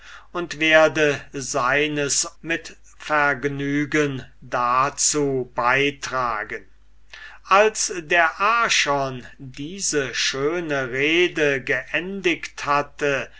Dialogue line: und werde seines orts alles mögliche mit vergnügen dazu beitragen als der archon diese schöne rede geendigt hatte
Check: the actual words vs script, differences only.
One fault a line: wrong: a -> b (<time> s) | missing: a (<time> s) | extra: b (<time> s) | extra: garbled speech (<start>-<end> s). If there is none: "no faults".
missing: orts alles mögliche (2.2 s)